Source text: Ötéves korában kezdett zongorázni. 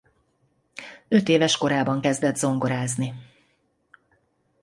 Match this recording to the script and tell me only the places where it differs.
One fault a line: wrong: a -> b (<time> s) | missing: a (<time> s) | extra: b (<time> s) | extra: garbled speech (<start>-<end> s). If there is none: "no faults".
no faults